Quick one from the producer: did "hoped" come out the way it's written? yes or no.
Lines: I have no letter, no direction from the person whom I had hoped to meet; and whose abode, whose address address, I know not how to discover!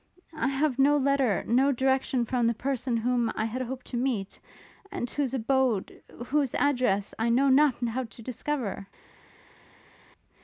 yes